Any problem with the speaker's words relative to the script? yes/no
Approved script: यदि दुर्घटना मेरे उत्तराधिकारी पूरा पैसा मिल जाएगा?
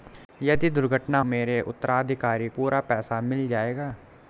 no